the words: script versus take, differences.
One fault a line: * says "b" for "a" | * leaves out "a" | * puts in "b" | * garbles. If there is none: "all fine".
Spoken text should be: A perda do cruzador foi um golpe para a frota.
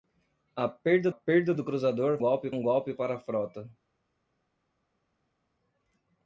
* puts in "perda"
* says "golpe" for "foi"